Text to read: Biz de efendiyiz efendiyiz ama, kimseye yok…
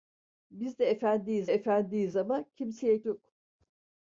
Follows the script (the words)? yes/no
yes